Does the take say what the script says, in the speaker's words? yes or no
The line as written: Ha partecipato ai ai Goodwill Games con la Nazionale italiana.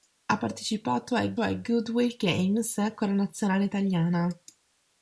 yes